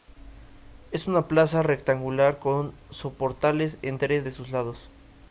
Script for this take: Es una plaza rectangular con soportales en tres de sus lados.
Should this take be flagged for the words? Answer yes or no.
no